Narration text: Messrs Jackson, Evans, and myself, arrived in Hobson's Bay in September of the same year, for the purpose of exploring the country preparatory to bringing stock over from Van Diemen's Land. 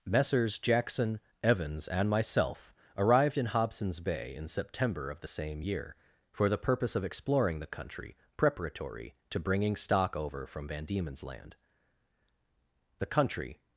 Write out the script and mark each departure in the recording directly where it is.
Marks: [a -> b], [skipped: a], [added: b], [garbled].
Messrs Jackson, Evans, and myself, arrived in Hobson's Bay in September of the same year, for the purpose of exploring the country preparatory to bringing stock over from Van Diemen's Land. [added: The country]